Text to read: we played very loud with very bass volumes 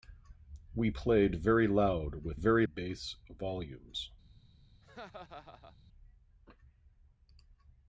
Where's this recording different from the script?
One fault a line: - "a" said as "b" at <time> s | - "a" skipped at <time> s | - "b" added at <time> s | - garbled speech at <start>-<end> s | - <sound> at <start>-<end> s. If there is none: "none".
- laugh at 4.8-5.8 s